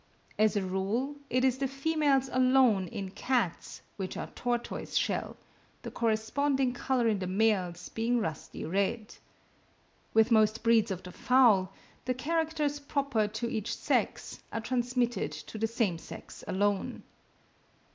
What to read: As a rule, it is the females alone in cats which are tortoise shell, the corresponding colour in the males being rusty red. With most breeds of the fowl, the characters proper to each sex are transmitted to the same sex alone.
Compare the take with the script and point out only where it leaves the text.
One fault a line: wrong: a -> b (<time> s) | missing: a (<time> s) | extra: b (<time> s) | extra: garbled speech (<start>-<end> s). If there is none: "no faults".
no faults